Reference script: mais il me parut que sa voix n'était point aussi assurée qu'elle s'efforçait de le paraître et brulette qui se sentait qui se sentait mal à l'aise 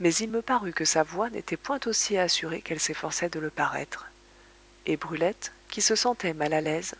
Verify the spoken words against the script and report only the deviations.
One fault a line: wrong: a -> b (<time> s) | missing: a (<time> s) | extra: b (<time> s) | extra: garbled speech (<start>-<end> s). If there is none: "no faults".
missing: qui se sentait (6.3 s)